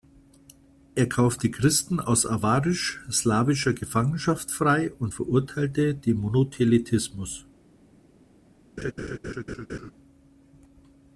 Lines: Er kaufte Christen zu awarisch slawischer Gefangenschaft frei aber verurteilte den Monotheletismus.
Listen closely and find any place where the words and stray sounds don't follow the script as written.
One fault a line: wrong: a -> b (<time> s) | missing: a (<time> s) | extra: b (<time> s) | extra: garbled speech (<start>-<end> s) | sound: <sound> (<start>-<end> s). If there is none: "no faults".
wrong: zu -> aus (2.0 s)
wrong: aber -> und (4.9 s)
sound: laugh (8.8-9.9 s)